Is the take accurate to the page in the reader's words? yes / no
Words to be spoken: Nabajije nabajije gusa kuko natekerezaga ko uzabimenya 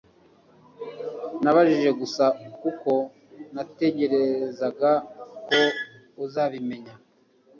no